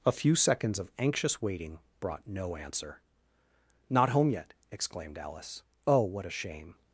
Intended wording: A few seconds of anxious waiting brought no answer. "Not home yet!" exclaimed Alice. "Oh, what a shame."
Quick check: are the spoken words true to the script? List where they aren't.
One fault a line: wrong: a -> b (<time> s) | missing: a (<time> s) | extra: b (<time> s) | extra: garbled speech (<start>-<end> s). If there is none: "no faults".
no faults